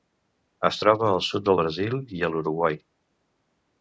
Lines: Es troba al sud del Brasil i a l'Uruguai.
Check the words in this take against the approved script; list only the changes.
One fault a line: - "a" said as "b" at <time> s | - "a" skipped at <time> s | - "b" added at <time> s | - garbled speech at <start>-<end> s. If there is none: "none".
none